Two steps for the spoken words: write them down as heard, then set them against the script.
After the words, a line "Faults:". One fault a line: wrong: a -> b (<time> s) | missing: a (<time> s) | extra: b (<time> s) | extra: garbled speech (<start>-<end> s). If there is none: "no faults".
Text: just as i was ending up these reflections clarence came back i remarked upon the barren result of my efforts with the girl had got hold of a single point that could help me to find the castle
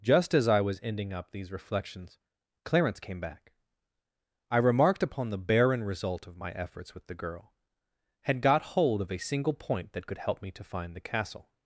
just as i was ending up these reflections clarence came back i remarked upon the barren result of my efforts with the girl had got hold of a single point that could help me to find the castle
Faults:
no faults